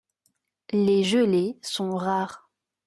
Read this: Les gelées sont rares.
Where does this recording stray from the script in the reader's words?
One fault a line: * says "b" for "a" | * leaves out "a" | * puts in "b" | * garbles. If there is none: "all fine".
all fine